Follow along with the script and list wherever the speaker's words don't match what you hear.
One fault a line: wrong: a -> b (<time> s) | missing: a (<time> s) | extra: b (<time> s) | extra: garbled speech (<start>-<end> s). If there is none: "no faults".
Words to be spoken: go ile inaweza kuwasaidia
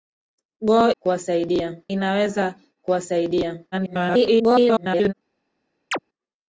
wrong: ile -> kuwasaidia (1.0 s)
extra: garbled speech (3.7-5.1 s)